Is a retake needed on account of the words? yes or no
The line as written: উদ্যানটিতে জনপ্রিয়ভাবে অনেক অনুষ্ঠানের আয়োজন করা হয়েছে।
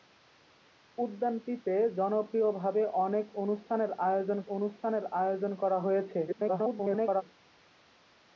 yes